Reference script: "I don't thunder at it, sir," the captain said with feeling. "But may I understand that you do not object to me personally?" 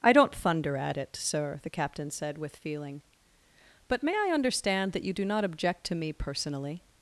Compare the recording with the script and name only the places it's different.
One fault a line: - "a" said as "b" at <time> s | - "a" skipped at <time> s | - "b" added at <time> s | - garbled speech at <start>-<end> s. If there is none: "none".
none